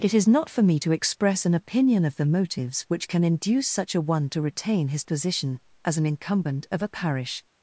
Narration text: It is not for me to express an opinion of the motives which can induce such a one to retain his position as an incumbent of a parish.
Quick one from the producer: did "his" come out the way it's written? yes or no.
yes